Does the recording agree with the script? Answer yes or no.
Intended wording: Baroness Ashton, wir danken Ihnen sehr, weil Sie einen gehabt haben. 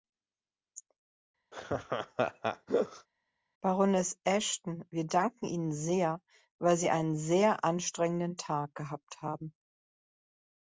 no